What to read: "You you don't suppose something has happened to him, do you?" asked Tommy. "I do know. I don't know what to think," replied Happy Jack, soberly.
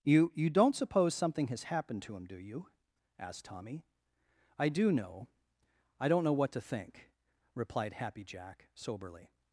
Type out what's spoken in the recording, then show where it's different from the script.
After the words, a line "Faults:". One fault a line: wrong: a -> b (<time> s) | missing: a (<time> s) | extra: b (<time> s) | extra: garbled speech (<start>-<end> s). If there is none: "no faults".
"You you don't suppose something has happened to him, do you?" asked Tommy. "I do know. I don't know what to think," replied Happy Jack, soberly.
Faults:
no faults